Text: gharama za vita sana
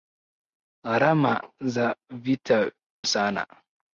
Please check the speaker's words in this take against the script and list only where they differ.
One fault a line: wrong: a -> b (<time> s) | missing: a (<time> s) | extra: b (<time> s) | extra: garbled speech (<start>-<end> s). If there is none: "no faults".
no faults